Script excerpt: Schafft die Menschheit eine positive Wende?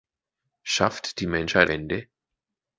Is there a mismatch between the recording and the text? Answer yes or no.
yes